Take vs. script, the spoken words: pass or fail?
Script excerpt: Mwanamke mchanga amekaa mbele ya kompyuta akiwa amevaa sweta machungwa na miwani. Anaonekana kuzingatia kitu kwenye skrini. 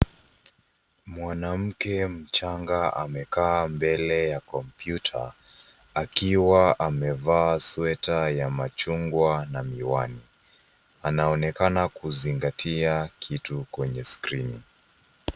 fail